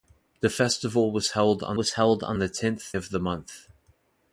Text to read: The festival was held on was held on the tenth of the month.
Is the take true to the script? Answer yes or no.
yes